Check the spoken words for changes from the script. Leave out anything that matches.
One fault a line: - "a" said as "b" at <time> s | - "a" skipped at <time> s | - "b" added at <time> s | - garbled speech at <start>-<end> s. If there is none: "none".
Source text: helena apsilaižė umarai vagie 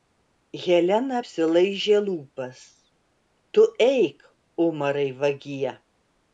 - "lūpas tu eik" added at 2.1 s